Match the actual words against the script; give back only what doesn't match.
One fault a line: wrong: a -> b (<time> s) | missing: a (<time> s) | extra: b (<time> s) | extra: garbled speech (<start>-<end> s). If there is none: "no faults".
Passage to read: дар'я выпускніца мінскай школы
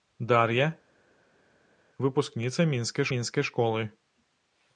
extra: мінскай (3.1 s)